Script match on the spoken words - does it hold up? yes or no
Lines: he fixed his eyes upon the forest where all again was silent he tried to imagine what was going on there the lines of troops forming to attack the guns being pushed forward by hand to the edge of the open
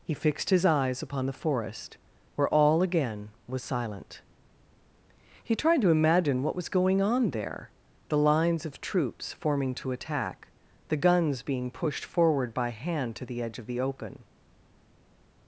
yes